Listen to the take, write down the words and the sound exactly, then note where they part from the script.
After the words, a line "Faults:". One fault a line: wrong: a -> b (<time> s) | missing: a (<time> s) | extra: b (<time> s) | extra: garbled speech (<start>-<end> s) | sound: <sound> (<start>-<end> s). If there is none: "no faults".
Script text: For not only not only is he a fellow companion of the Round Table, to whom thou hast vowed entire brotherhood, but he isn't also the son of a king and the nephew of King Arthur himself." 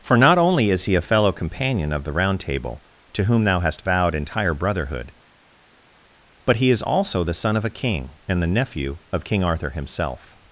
For not only is he a fellow companion of the Round Table, to whom thou hast vowed entire brotherhood, but he is also the son of a king and the nephew of King Arthur himself."
Faults:
missing: not only (0.7 s)
wrong: isn't -> is (6.7 s)